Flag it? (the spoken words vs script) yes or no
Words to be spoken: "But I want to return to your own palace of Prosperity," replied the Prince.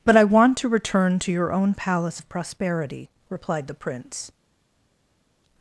no